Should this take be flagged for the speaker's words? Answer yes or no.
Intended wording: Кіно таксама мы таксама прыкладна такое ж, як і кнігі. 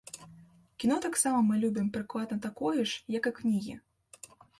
yes